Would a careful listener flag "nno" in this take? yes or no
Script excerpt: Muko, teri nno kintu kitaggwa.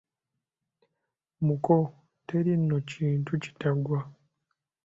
no